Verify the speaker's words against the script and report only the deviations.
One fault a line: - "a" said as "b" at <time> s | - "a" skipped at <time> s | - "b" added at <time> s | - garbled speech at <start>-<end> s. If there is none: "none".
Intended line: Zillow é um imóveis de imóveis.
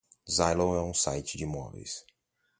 - "imóveis" said as "site" at 0.9 s